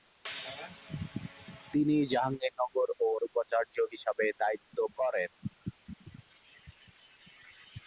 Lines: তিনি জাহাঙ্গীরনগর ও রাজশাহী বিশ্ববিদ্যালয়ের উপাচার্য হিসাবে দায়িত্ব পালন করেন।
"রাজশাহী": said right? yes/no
no